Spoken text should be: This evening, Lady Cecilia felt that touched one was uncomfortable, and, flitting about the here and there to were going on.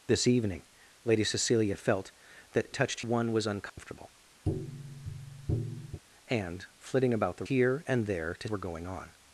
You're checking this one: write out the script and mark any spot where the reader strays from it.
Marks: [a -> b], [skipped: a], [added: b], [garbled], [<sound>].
This evening, Lady Cecilia felt that touched one was uncomfortable, [dropout] [tap] and, flitting about the here and there to were going on.